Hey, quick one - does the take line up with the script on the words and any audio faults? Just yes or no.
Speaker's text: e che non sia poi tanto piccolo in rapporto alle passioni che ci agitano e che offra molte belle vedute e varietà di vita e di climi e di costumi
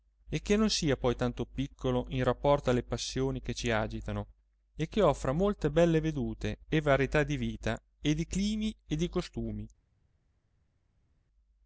yes